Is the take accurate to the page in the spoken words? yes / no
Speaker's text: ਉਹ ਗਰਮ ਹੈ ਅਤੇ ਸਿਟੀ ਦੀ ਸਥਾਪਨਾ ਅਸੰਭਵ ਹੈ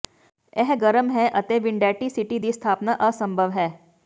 no